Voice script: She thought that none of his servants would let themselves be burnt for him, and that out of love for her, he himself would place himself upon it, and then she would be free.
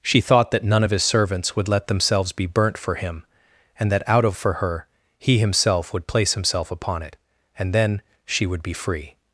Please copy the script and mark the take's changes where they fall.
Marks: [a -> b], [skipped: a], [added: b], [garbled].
She thought that none of his servants would let themselves be burnt for him, and that out of [skipped: love] for her, he himself would place himself upon it, and then she would be free.